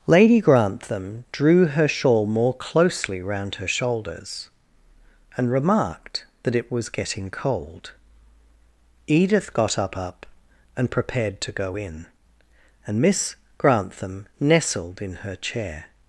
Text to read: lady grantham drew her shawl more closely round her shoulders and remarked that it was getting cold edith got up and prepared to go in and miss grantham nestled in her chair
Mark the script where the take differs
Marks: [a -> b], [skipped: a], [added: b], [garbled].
lady grantham drew her shawl more closely round her shoulders and remarked that it was getting cold edith got up [added: up] and prepared to go in and miss grantham nestled in her chair